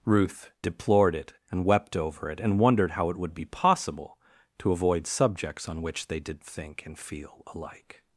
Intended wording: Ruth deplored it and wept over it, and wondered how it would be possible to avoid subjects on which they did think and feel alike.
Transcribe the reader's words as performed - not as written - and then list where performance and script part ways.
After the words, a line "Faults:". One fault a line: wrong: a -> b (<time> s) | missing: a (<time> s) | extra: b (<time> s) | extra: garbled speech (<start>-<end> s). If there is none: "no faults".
Ruth deplored it and wept over it, and wondered how it would be possible to avoid subjects on which they did think and feel alike.
Faults:
no faults